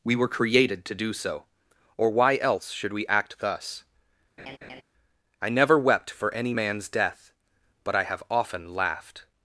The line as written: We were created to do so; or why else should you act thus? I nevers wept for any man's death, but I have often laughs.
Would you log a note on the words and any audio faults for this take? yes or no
yes